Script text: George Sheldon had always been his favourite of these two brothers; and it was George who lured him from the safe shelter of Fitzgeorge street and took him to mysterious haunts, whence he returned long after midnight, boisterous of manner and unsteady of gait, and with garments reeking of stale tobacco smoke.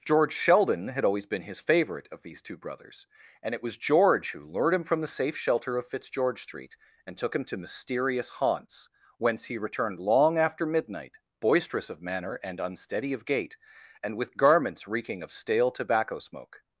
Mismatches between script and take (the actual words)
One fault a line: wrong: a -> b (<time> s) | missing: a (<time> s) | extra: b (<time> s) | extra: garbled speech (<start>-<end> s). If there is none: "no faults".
no faults